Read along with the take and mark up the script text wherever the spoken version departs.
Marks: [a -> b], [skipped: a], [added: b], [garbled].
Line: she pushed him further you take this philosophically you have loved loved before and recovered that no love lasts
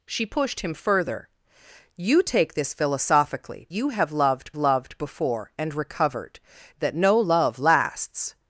she pushed him further you take this philosophically you have loved loved before and recovered that no love lasts